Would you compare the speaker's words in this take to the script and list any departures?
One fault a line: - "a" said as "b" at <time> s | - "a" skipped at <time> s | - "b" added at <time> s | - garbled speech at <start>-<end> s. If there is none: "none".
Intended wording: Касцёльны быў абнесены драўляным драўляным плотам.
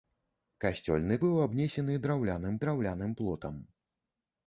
none